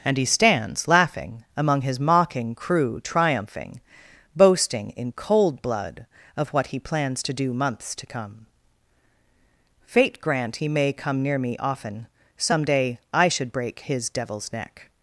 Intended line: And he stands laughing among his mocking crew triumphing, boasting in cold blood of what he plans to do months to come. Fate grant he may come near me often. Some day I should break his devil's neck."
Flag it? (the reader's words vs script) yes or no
no